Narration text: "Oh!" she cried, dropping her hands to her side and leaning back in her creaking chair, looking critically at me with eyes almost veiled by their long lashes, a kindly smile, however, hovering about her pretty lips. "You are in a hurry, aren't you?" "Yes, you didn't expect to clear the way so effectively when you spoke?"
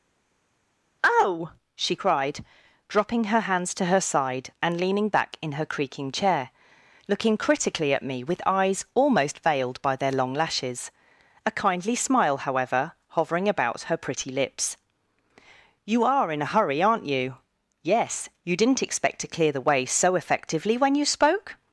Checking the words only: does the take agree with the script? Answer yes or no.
yes